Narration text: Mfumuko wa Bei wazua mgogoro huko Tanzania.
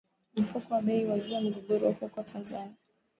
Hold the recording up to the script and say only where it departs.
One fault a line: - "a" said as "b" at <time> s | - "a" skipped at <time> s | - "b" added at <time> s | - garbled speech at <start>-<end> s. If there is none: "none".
none